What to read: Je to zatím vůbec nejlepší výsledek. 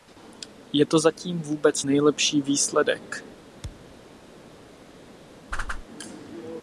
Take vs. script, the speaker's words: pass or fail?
pass